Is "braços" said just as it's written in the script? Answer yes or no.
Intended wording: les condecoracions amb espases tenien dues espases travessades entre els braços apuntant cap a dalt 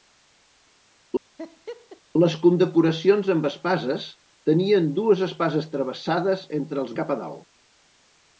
no